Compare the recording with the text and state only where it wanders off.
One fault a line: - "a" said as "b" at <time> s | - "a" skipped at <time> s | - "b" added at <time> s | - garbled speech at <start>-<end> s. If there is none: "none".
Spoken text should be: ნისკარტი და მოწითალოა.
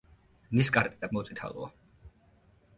none